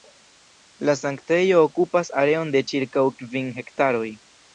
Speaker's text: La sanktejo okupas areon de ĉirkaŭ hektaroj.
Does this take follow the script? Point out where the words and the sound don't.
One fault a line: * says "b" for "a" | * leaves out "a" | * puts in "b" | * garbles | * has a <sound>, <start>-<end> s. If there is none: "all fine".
* puts in "kvin"